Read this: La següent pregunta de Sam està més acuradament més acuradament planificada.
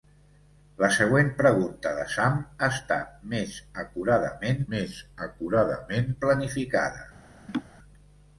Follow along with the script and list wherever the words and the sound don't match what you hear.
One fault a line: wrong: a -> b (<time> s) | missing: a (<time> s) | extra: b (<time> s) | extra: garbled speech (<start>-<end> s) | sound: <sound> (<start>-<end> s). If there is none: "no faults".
sound: laugh (7.5-7.6 s)